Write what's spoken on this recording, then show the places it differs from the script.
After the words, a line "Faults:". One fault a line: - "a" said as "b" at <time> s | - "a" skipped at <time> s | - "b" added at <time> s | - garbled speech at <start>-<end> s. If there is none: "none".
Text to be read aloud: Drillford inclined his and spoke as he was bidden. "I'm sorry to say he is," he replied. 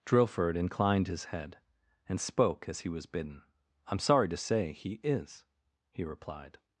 Drillford inclined his head, and spoke as he was bidden. "I'm sorry to say he is," he replied.
Faults:
- "head" added at 1.2 s